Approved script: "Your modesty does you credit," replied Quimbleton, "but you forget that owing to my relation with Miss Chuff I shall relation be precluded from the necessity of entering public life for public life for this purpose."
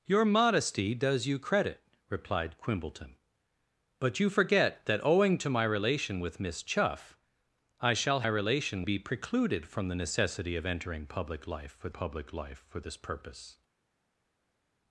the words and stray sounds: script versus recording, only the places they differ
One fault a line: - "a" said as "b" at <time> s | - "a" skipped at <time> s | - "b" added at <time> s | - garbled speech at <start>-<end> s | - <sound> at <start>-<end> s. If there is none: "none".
none